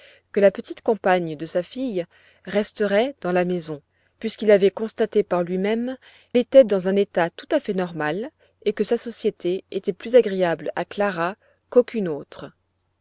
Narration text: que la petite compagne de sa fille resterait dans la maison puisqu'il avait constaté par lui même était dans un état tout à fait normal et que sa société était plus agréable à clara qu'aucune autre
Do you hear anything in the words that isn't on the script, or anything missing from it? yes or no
no